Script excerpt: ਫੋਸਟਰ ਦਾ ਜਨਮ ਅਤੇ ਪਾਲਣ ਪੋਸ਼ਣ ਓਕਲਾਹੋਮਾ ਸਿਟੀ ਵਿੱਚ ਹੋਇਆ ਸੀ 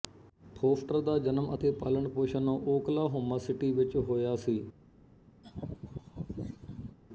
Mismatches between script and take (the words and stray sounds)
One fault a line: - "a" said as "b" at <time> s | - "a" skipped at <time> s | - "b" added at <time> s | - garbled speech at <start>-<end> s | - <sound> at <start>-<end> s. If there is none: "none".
- laugh at 5.4-7.0 s